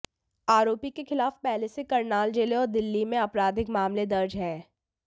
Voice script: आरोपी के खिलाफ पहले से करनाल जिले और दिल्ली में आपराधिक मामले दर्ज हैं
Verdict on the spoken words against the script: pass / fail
pass